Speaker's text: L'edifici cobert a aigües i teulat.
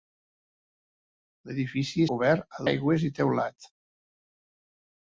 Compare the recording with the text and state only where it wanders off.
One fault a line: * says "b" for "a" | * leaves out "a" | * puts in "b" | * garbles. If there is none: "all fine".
all fine